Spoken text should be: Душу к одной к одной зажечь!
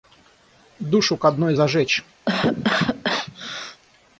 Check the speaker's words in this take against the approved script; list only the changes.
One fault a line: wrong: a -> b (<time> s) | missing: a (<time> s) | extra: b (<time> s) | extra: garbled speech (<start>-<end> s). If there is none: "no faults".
missing: к одной (1.5 s)